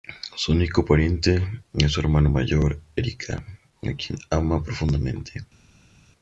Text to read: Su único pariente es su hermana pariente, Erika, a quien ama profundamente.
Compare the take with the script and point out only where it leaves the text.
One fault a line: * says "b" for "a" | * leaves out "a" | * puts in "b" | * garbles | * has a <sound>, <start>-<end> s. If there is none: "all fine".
* says "mayor" for "pariente"